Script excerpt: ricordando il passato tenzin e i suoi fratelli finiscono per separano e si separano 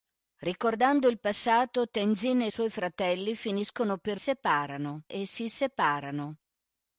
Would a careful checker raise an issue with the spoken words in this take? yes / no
no